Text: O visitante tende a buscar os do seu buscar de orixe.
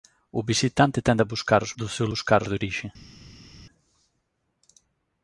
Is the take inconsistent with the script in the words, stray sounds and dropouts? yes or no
no